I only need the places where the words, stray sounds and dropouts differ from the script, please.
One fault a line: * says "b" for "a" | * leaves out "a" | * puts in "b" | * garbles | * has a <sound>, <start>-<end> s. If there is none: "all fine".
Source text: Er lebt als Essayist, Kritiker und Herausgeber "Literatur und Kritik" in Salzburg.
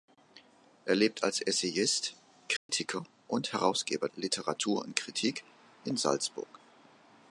* has a dropout, 2.6-2.7 s